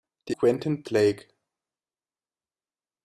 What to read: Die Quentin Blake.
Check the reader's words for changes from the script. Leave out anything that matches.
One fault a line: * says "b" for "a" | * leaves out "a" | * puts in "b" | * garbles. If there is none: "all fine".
all fine